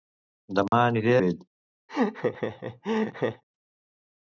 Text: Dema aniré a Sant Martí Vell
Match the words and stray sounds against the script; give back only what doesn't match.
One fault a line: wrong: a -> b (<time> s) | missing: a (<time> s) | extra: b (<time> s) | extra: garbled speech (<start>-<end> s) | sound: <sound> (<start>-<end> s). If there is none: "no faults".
sound: dropout (0.7-0.7 s)
missing: a Sant Martí (1.1 s)
sound: laugh (1.9-3.4 s)